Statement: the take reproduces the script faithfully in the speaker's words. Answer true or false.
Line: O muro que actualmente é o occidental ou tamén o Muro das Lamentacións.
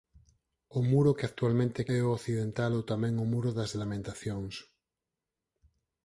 true